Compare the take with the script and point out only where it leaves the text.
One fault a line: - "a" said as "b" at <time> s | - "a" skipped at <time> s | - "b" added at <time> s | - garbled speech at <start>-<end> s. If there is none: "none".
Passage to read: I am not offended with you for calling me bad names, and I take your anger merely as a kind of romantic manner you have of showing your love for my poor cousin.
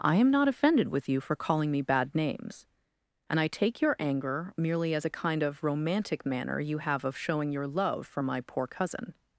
none